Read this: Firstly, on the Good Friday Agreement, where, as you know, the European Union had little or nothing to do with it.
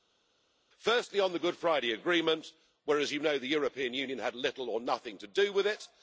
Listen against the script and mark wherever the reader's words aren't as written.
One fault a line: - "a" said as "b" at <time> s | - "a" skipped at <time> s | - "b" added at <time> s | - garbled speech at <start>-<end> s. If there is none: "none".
none